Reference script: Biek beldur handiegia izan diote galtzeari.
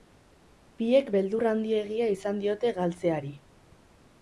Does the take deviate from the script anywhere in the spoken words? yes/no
no